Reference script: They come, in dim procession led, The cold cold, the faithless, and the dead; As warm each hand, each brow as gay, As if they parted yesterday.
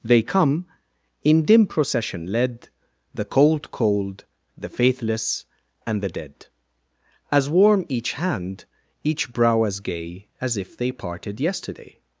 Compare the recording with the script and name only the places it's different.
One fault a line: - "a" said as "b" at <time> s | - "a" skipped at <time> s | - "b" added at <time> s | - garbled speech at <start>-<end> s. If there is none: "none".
none